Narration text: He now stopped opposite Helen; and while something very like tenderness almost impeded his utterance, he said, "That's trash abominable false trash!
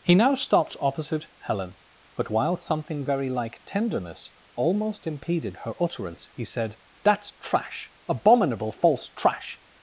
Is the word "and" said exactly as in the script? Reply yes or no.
no